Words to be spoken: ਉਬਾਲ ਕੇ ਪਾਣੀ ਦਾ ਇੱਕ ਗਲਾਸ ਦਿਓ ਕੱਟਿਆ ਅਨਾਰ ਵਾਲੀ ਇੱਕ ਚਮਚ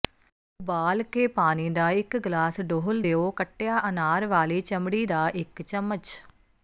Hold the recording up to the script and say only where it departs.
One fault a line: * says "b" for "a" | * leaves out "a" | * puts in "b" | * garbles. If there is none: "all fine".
* puts in "ਡੋਲ੍ਹ"
* puts in "ਚਮੜੀ ਦਾ"